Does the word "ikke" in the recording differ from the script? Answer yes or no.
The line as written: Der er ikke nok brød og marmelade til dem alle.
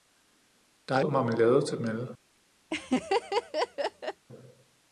yes